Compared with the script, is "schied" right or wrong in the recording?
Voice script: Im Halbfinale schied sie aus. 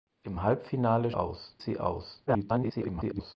wrong